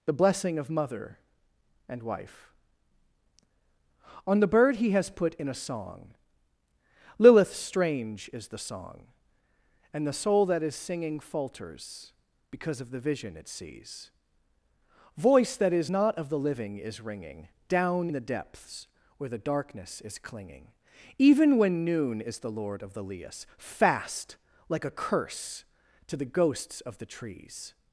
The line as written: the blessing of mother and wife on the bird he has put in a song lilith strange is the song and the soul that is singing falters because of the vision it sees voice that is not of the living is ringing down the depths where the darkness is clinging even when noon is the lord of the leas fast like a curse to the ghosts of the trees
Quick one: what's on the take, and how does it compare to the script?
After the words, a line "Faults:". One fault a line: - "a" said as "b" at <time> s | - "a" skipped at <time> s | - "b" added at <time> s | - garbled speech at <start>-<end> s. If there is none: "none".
the blessing of mother and wife on the bird he has put in a song lilith strange is the song and the soul that is singing falters because of the vision it sees voice that is not of the living is ringing down the depths where the darkness is clinging even when noon is the lord of the leas fast like a curse to the ghosts of the trees
Faults:
none